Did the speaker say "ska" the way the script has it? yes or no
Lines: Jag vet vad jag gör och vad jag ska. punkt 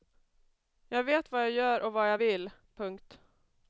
no